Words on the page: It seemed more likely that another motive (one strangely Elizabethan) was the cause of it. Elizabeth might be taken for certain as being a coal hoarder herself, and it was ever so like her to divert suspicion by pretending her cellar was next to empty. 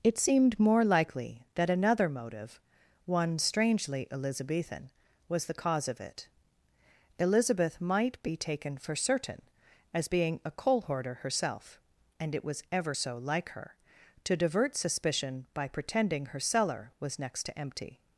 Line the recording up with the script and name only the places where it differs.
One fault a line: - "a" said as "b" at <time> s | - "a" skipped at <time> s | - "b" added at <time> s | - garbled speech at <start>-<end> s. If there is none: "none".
none